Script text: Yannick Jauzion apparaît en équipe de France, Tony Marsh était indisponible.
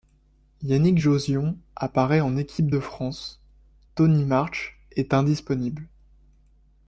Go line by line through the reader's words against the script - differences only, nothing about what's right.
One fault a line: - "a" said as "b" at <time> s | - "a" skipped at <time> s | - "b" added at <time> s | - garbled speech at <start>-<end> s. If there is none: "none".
- "était" said as "est" at 4.9 s